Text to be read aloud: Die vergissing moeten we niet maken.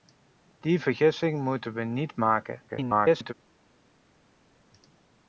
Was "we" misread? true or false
false